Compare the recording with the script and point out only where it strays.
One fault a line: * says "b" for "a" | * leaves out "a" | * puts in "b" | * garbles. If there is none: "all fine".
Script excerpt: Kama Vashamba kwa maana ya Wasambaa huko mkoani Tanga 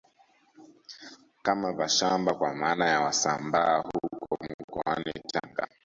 all fine